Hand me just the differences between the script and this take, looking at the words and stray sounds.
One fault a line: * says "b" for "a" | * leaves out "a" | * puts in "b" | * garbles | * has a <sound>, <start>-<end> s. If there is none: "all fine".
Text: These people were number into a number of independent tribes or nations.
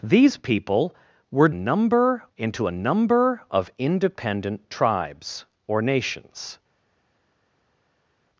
all fine